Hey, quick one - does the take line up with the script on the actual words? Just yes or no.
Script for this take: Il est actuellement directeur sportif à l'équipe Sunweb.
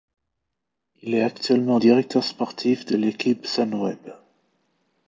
no